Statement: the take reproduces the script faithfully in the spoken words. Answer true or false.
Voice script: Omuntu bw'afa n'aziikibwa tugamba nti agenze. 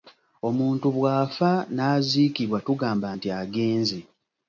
true